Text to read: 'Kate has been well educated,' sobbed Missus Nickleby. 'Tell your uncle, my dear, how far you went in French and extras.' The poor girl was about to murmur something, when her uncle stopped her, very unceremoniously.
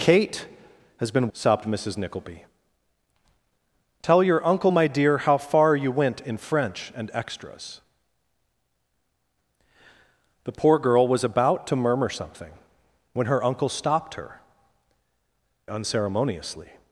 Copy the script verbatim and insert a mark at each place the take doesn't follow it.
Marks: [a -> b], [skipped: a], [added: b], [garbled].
'Kate has been [skipped: well educated,'] sobbed Missus Nickleby. 'Tell your uncle, my dear, how far you went in French and extras.' The poor girl was about to murmur something, when her uncle stopped her, [skipped: very] unceremoniously.